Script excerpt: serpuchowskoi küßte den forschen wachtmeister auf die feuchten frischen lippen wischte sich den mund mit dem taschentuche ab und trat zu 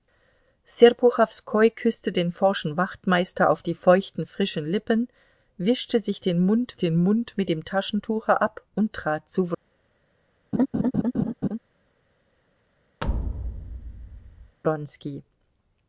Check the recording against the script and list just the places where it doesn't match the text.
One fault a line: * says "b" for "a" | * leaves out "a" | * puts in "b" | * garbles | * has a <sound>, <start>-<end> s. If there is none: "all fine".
* puts in "den mund"
* has a laugh, 10.5-11.6 s
* has a thud, 13.0-14.6 s